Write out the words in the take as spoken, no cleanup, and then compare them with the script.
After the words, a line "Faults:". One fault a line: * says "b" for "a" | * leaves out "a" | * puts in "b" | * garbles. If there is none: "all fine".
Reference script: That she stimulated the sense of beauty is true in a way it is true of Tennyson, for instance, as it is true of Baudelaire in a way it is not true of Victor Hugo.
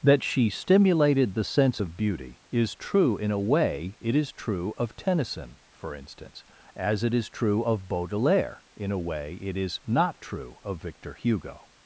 That she stimulated the sense of beauty is true in a way it is true of Tennyson, for instance, as it is true of Baudelaire in a way it is not true of Victor Hugo.
Faults:
all fine